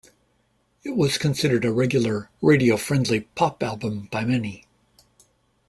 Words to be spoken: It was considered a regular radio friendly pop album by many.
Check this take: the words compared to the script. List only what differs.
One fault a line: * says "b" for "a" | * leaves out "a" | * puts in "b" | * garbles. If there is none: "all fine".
all fine